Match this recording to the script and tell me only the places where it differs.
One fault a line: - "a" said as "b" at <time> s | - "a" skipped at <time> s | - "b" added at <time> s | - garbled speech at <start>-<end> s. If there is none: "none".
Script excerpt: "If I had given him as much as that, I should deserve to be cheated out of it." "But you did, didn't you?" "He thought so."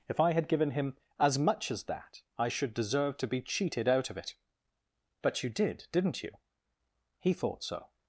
none